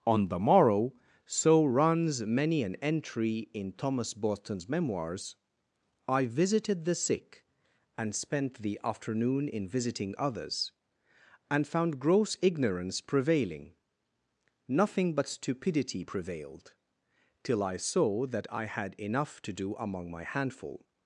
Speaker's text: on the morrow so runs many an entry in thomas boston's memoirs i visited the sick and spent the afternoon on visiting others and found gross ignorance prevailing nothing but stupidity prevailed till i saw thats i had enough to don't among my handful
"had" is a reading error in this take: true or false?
false